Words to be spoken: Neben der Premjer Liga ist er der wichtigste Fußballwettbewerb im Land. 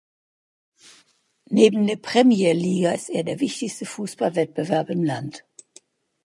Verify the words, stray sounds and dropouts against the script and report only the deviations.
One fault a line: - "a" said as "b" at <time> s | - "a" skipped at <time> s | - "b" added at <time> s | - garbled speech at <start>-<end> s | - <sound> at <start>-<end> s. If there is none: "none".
none